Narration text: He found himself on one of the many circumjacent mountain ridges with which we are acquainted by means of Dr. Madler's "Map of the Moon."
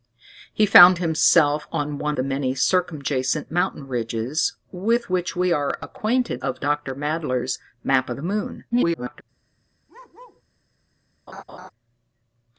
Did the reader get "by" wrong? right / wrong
wrong